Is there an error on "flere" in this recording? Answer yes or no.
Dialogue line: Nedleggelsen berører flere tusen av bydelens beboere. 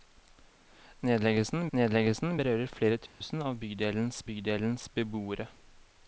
no